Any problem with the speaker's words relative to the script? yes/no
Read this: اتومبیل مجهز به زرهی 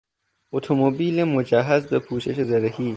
yes